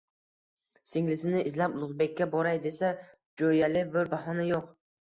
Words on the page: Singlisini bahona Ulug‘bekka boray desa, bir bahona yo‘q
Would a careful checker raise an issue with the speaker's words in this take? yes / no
yes